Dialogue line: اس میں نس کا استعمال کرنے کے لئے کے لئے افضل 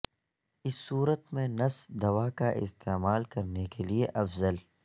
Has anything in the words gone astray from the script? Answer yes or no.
yes